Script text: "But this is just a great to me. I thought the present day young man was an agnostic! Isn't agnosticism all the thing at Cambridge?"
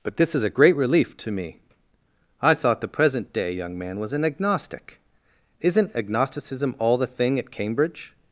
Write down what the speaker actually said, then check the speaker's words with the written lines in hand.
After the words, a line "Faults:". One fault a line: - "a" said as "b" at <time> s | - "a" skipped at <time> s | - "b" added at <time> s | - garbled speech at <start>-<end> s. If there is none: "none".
"But this is a great relief to me. I thought the present day young man was an agnostic! Isn't agnosticism all the thing at Cambridge?"
Faults:
- "just" skipped at 0.4 s
- "relief" added at 0.7 s